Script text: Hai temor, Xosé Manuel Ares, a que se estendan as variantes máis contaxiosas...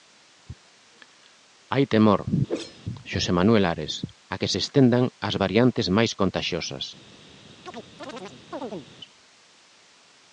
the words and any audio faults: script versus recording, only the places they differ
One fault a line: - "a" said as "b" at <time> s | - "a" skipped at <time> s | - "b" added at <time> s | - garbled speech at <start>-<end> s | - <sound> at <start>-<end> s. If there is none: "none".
- whoosh at 2.5-2.8 s
- chirp at 7.6-8.9 s